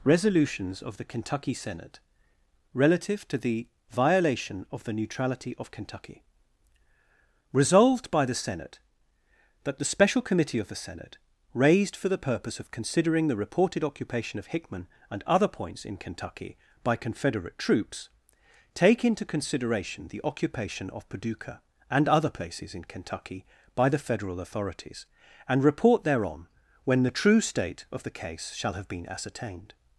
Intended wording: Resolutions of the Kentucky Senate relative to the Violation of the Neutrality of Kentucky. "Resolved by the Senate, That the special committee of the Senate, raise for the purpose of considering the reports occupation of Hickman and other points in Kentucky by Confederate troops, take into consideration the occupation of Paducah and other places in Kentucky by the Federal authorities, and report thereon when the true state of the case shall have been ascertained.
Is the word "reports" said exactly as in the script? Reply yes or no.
no